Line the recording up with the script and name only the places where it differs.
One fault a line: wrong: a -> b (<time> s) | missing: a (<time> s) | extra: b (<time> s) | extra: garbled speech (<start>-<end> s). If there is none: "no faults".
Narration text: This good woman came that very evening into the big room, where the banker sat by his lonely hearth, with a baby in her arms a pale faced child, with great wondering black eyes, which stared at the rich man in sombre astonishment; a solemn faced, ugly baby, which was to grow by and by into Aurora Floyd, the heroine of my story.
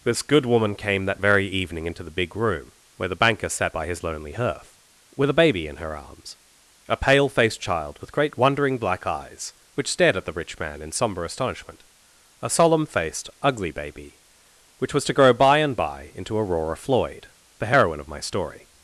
no faults